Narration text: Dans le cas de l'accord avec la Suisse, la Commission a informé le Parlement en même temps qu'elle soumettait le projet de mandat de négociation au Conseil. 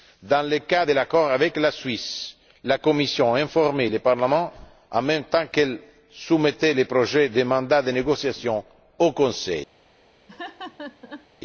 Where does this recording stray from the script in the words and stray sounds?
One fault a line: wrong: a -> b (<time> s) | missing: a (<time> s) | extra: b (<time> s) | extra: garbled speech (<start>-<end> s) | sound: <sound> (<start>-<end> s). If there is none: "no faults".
sound: laugh (10.3-11.3 s)